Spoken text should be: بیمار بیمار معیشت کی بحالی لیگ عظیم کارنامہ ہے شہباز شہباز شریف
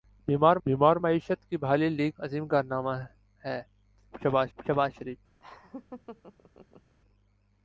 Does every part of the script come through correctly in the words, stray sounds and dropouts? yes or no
no